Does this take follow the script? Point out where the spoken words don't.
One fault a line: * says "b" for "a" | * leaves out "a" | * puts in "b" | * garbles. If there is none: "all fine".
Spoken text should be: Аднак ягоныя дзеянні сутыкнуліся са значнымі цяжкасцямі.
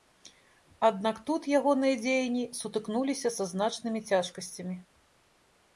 * puts in "тут"